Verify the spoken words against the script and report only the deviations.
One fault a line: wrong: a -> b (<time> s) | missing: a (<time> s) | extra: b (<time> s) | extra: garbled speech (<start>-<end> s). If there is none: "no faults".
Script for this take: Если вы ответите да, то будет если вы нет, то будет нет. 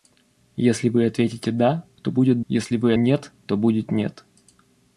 no faults